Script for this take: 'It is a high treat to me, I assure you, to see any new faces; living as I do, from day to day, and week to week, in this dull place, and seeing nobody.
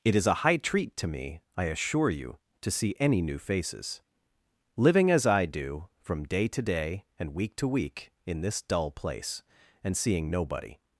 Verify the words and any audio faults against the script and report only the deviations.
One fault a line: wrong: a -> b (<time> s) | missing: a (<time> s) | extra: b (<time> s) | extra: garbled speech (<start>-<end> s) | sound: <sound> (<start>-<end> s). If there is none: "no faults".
no faults